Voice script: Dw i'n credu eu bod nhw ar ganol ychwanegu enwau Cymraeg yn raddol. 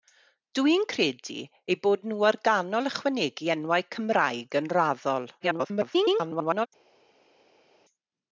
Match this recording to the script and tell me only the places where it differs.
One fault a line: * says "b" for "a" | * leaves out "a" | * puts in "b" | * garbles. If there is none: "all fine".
* garbles